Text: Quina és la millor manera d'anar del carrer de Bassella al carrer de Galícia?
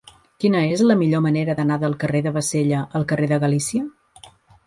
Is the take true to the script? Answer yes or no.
yes